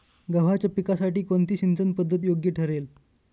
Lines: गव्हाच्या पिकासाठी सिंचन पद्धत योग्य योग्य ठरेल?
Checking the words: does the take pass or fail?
fail